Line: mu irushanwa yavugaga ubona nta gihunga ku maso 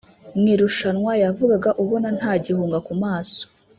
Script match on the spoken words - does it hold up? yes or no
yes